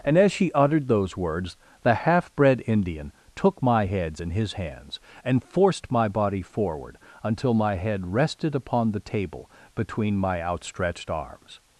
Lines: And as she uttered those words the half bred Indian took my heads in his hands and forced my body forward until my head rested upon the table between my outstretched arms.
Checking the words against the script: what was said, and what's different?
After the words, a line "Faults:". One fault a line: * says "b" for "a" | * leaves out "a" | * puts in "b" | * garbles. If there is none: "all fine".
And as she uttered those words the half bred Indian took my heads in his hands and forced my body forward until my head rested upon the table between my outstretched arms.
Faults:
all fine